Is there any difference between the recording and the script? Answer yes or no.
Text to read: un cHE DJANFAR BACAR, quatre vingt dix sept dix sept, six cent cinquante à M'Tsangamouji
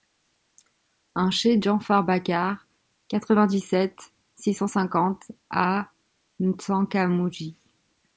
yes